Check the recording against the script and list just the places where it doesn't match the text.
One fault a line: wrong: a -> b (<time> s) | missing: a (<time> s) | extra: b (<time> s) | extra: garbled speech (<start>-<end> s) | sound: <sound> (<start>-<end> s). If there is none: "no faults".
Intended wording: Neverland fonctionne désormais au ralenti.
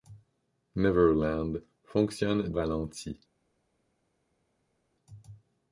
missing: désormais au (2.5 s)